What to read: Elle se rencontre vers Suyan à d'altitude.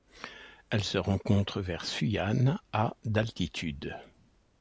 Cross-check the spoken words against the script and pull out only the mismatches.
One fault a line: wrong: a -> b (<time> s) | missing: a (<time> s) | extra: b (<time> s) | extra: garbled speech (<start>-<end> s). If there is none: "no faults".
no faults